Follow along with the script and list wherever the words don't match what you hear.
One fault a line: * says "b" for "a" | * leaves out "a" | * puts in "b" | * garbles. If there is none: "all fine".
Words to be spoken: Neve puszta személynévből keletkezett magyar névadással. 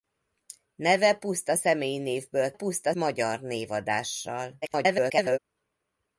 * says "puszta" for "keletkezett"
* garbles